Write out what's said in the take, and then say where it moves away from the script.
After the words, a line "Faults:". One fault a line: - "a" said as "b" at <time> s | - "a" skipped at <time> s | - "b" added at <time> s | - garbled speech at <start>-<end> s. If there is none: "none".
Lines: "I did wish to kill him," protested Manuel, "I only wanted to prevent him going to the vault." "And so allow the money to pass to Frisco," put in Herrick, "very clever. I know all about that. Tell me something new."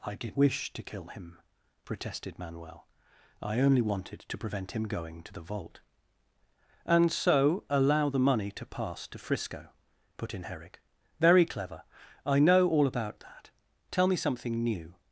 "I did wish to kill him," protested Manuel, "I only wanted to prevent him going to the vault." "And so allow the money to pass to Frisco," put in Herrick, "very clever. I know all about that. Tell me something new."
Faults:
none